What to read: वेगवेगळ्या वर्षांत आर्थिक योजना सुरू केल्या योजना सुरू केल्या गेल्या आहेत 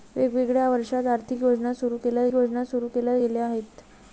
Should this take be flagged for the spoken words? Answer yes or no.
no